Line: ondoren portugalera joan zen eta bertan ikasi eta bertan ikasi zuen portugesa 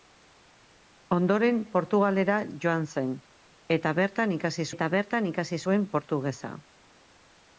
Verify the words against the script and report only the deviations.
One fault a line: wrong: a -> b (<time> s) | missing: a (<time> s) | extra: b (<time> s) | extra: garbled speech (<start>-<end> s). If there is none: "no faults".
no faults